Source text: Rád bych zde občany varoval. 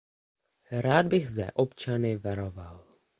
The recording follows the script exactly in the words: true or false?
true